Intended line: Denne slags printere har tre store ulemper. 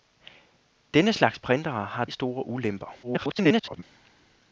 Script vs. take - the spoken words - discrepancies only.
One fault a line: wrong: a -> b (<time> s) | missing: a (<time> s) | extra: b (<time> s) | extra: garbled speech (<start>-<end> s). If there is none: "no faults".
missing: tre (2.0 s)
extra: garbled speech (3.0-3.8 s)